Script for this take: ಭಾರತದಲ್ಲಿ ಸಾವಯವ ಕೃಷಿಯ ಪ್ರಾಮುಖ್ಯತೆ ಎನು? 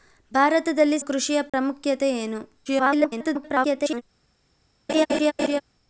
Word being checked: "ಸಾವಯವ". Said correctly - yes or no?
no